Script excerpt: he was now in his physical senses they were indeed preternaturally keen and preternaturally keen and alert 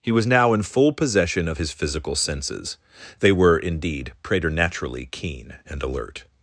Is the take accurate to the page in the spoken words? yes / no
no